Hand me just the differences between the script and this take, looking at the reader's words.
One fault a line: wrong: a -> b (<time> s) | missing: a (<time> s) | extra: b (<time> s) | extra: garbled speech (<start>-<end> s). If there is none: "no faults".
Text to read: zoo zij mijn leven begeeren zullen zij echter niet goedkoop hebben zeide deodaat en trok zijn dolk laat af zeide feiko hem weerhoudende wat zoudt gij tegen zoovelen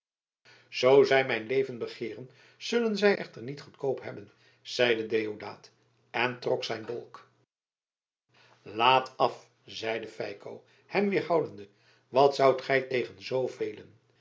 no faults